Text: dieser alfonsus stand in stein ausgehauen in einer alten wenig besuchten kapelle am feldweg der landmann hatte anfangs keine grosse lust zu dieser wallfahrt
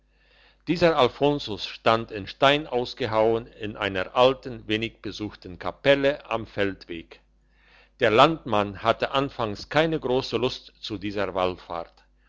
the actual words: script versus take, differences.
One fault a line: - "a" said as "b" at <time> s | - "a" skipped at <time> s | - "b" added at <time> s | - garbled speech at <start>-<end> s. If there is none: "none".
none